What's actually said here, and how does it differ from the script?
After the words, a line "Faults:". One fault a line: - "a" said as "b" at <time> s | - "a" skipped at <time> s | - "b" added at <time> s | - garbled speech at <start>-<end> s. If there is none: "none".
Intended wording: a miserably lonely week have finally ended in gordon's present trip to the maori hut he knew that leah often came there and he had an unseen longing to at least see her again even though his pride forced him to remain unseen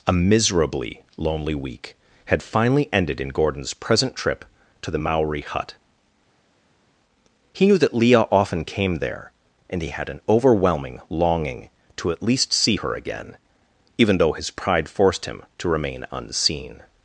a miserably lonely week had finally ended in gordon's present trip to the maori hut he knew that leah often came there and he had an overwhelming longing to at least see her again even though his pride forced him to remain unseen
Faults:
- "have" said as "had" at 2.2 s
- "unseen" said as "overwhelming" at 10.3 s